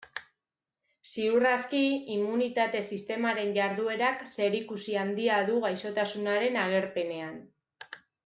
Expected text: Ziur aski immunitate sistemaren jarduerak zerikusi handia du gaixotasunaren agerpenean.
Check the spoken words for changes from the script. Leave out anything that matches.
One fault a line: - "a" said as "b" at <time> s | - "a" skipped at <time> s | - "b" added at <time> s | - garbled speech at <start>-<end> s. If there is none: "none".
none